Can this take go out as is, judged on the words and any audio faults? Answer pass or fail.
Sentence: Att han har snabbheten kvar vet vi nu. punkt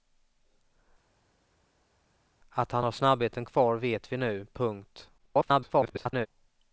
fail